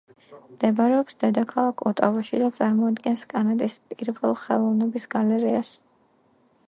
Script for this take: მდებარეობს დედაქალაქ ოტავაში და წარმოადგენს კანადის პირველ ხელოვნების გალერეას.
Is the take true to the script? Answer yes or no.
yes